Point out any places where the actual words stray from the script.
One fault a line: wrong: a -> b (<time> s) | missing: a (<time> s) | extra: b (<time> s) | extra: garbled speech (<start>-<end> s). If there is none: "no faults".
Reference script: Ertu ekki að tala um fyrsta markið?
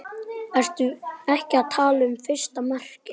no faults